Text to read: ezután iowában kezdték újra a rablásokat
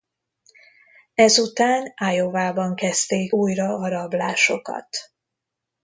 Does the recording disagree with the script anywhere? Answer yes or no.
no